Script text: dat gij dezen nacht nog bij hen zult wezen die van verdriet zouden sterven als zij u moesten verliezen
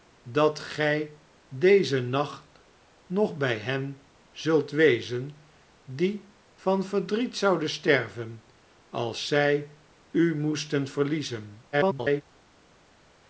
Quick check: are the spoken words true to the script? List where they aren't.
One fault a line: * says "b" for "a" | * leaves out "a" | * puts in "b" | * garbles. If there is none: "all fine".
* garbles